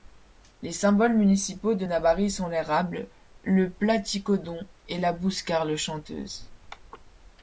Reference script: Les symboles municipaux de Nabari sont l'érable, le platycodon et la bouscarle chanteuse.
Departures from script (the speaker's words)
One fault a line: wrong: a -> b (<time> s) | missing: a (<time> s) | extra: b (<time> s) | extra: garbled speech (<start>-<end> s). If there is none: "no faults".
no faults